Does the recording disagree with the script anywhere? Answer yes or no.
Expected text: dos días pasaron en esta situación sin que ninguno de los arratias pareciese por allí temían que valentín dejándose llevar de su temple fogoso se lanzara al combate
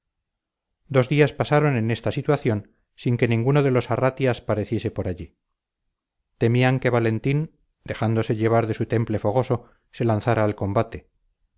no